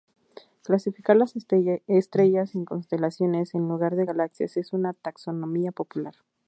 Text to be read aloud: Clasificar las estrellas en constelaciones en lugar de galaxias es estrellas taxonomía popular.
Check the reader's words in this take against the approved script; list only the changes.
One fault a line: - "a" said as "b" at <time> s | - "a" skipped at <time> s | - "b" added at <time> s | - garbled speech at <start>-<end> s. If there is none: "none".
- "estrellas" said as "una" at 4.7 s